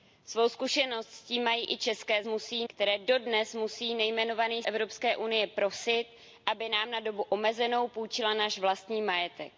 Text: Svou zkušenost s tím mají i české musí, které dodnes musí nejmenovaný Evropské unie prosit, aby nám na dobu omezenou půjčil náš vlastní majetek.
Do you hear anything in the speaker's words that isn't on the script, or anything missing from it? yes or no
no